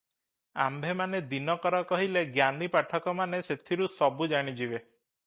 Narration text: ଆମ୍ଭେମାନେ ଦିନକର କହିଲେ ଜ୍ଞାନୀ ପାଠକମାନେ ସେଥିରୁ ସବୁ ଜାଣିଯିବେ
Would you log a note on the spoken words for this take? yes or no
no